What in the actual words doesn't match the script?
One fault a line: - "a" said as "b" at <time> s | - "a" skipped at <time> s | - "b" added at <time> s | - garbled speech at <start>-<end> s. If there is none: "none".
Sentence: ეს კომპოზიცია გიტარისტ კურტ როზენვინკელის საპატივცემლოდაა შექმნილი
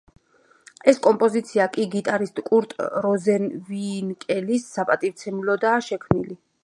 - "კი" added at 1.8 s